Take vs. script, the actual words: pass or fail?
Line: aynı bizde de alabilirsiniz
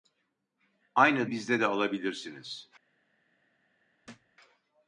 pass